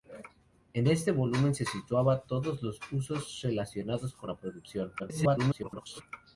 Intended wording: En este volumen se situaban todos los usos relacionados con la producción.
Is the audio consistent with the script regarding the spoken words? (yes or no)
no